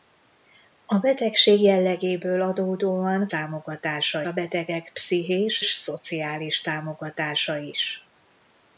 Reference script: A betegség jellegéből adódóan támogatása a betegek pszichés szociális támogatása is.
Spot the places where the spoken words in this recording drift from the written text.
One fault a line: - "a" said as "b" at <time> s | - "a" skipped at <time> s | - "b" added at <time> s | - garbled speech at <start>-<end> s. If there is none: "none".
none